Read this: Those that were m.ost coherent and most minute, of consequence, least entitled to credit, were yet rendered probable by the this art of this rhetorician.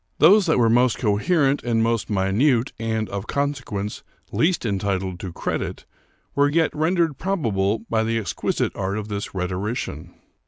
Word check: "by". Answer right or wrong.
right